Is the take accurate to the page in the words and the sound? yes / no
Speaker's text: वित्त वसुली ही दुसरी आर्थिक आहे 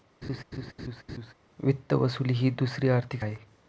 no